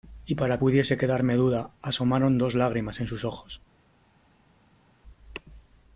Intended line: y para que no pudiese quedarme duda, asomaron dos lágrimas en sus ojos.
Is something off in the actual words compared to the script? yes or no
yes